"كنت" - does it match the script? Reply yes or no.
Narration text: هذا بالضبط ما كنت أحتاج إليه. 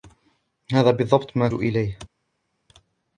no